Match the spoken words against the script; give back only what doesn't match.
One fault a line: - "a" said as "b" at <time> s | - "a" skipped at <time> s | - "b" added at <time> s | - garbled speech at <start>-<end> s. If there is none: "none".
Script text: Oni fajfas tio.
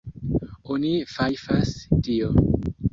none